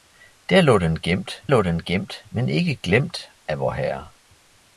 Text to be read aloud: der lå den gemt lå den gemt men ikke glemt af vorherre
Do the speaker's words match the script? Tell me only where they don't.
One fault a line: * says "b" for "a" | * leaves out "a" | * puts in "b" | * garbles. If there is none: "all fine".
all fine